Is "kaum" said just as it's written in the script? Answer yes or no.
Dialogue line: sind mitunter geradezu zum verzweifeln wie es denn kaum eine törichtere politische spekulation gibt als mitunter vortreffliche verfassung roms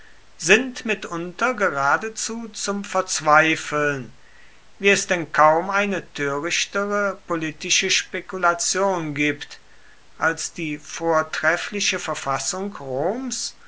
yes